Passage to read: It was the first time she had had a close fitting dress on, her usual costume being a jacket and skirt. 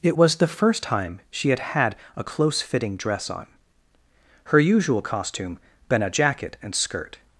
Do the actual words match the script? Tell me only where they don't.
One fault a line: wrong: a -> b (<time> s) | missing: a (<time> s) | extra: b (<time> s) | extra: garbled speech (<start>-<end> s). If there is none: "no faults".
wrong: being -> been (5.9 s)